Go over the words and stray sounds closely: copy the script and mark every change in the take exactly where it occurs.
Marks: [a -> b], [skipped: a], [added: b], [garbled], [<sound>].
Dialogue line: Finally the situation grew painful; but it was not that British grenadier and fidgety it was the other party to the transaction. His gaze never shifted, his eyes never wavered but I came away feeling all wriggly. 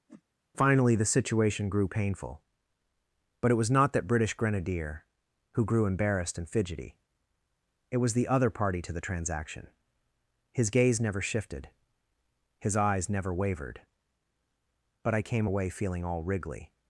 [whoosh] Finally the situation grew painful; but it was not that British grenadier [added: who grew embarrassed] and fidgety it was the other party to the transaction. His gaze never shifted, his eyes never wavered but I came away feeling all wriggly.